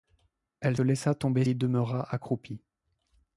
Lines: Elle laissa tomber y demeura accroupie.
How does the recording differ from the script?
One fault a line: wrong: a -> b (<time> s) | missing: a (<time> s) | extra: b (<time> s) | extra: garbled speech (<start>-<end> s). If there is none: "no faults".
no faults